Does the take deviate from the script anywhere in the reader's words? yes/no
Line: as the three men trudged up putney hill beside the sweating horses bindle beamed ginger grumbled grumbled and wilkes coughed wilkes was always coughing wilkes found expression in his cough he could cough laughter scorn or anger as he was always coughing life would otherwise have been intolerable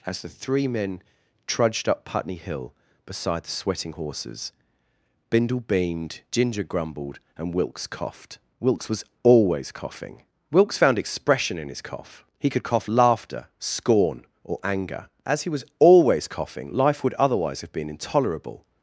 yes